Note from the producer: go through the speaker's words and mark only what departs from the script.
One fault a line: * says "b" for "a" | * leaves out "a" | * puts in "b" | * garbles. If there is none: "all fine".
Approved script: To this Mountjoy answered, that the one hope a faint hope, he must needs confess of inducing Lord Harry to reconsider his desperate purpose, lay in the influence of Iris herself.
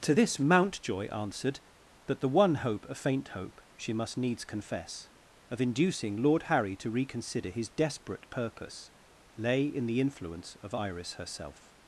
* says "she" for "he"